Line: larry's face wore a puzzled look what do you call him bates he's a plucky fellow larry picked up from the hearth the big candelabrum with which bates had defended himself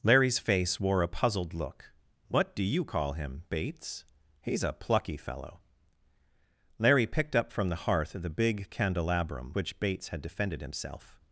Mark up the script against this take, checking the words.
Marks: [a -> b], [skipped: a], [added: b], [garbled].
larry's face wore a puzzled look what do you call him bates he's a plucky fellow larry picked up from the hearth the big candelabrum [skipped: with] which bates had defended himself